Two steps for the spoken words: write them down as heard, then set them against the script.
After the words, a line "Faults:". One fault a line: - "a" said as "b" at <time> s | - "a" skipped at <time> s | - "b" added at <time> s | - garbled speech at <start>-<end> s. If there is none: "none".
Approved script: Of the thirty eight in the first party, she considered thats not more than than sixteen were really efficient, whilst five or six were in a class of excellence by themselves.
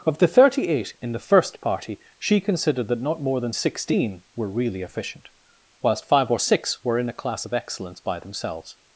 Of the thirty eight in the first party, she considered that not more than sixteen were really efficient, whilst five or six were in a class of excellence by themselves.
Faults:
- "thats" said as "that" at 2.9 s
- "than" skipped at 3.5 s